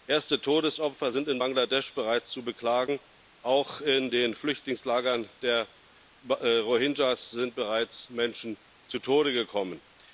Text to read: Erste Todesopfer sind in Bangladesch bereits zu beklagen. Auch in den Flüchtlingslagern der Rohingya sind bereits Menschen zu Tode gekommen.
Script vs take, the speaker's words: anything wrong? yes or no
no